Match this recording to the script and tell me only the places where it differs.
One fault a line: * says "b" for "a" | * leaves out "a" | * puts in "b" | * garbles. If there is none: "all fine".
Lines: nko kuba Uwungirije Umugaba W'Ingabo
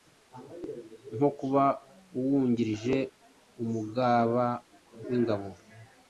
all fine